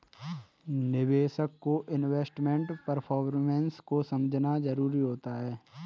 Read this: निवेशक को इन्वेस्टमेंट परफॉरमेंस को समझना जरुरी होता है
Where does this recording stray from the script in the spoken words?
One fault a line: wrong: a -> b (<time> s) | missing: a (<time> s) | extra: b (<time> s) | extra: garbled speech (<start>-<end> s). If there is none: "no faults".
no faults